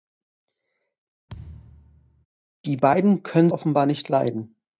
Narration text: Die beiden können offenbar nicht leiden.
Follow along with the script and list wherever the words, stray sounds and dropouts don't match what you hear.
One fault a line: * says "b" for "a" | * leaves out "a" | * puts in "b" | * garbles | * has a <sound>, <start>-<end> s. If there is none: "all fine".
* has a thud, 1.3-2.3 s